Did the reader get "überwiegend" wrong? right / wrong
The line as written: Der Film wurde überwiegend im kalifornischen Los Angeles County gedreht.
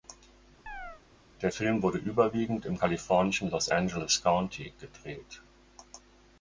right